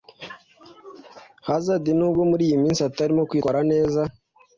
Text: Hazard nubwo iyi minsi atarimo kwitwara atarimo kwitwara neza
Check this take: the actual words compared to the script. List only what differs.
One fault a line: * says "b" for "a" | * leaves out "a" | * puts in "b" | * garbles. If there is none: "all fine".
* puts in "muri"
* leaves out "atarimo kwitwara"